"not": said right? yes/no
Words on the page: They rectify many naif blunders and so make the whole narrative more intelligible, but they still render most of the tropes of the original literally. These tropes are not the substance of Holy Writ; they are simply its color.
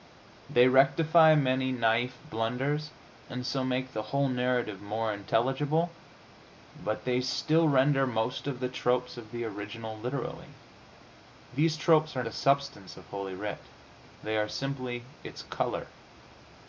no